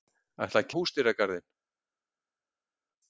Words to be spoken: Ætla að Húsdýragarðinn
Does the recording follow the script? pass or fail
pass